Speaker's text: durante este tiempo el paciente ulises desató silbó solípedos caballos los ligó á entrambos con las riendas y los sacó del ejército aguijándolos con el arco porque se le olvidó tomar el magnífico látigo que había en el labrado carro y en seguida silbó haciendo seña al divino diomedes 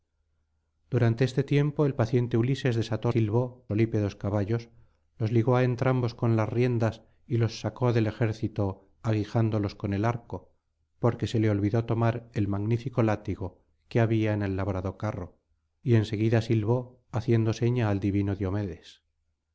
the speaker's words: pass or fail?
pass